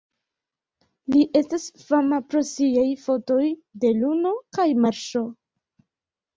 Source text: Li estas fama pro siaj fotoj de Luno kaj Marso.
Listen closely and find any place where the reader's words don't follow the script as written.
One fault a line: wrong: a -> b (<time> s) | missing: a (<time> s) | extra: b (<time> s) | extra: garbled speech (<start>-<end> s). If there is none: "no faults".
no faults